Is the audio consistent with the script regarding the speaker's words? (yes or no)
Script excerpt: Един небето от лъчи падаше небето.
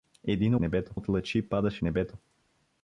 yes